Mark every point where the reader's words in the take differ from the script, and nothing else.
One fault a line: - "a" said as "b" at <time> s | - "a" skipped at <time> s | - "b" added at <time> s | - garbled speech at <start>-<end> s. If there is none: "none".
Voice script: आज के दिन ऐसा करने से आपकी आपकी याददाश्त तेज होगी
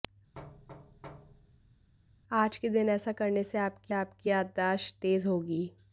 none